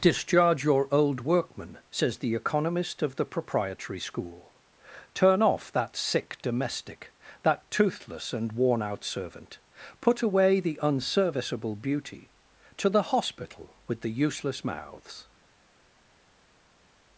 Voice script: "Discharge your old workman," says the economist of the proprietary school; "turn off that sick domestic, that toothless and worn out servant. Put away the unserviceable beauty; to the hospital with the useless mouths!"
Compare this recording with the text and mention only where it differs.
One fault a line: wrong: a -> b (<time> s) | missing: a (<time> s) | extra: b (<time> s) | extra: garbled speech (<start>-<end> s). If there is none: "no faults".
no faults